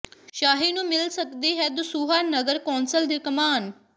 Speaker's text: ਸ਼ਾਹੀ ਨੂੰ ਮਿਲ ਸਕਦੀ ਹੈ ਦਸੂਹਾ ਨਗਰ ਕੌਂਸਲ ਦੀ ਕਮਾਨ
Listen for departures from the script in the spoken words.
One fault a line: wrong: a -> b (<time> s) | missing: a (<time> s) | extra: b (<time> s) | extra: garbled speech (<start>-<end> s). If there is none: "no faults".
no faults